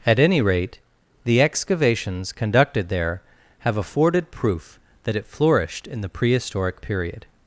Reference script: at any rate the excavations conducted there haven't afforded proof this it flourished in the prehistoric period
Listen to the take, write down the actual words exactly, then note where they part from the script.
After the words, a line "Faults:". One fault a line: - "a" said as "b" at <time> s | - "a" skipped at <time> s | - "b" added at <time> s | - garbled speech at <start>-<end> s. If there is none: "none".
at any rate the excavations conducted there have afforded proof that it flourished in the prehistoric period
Faults:
- "haven't" said as "have" at 3.6 s
- "this" said as "that" at 5.0 s